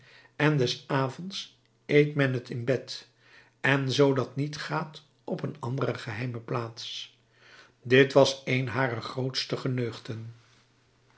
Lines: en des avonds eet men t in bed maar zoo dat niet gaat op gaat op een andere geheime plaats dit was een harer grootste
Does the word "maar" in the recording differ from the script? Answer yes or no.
yes